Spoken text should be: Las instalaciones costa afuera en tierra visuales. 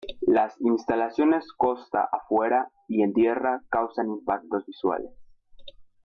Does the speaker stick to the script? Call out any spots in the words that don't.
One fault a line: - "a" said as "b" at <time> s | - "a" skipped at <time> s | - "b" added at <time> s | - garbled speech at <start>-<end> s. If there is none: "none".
- "y" added at 2.9 s
- "causan impactos" added at 3.7 s